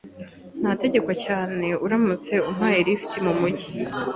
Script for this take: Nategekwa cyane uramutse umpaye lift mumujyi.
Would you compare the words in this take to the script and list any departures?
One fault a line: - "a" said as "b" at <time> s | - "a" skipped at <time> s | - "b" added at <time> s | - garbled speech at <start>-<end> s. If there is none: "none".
none